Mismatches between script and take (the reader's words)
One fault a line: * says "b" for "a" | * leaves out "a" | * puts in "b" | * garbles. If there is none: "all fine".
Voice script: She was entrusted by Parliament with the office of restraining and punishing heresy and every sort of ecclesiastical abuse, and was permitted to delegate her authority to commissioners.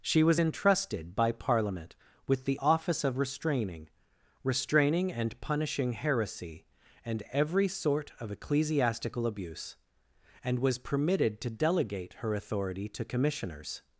* puts in "restraining"